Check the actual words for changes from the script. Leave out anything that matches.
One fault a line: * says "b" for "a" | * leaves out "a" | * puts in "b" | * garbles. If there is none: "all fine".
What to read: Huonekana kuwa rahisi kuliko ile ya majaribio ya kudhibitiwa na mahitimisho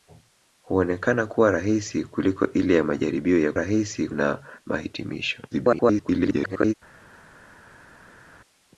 * says "rahisi" for "kudhibitiwa"
* garbles